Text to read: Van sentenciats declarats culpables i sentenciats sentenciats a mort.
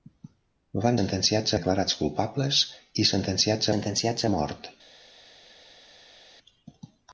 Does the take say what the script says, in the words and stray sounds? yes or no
yes